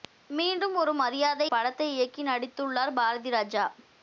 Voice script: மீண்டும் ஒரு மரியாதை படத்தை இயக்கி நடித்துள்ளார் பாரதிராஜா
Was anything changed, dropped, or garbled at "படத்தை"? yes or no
no